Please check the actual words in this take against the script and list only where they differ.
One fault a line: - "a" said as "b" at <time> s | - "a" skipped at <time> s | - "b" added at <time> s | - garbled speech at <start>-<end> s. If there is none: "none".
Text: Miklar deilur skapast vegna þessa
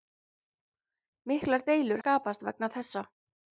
none